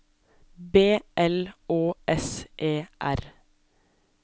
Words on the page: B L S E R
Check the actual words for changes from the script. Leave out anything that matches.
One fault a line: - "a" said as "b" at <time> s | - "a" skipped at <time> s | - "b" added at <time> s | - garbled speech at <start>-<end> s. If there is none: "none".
- "Å" added at 1.7 s